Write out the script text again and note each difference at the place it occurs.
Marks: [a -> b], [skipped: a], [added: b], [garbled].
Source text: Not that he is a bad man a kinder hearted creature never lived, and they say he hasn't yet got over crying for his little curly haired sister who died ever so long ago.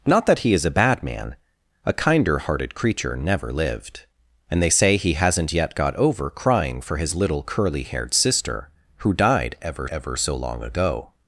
Not that he is a bad man a kinder hearted creature never lived, and they say he hasn't yet got over crying for his little curly haired sister who died ever [added: ever] so long ago.